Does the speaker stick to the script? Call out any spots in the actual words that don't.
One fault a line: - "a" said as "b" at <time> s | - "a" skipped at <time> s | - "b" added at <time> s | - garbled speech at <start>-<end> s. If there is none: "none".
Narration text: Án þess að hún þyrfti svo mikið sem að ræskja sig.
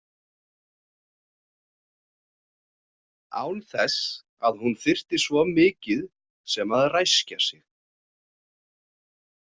none